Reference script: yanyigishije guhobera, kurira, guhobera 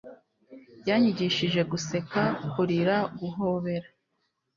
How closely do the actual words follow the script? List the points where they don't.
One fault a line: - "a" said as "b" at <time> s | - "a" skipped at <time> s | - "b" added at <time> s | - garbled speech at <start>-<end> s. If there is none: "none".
- "guhobera" said as "guseka" at 1.7 s